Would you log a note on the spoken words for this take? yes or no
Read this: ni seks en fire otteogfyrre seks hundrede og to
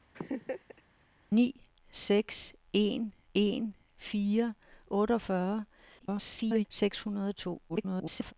yes